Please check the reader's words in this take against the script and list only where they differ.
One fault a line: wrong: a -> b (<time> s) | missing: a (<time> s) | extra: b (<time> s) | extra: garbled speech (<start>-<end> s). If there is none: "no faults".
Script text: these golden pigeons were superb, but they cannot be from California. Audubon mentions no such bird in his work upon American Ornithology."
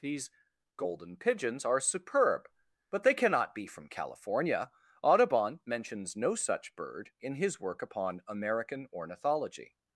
wrong: were -> are (1.6 s)